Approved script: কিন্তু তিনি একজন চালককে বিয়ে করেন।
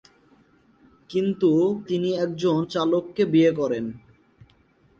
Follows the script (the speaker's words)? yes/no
yes